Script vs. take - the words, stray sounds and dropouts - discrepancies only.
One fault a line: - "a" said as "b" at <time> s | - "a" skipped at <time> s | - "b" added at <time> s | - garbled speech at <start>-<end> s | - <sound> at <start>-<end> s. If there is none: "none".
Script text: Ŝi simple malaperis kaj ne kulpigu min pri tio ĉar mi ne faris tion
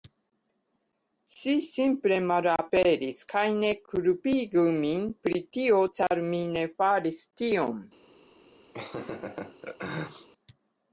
- laugh at 8.7-10.3 s